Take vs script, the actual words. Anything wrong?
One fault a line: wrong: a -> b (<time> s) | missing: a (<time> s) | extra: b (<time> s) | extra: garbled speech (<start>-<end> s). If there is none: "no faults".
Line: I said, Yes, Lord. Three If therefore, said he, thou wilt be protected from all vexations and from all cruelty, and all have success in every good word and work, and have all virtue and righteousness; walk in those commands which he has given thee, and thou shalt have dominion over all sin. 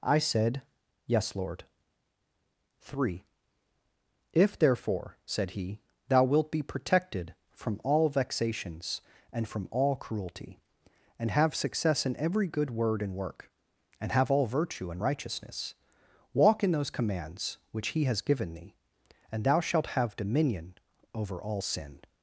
missing: all (11.3 s)